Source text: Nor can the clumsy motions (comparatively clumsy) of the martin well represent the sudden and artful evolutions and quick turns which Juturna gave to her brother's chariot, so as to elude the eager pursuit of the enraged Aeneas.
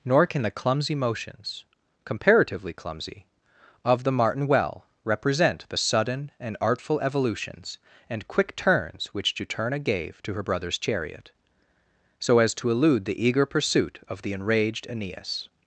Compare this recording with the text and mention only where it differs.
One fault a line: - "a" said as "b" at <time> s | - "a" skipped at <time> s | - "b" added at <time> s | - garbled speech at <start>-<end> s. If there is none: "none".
none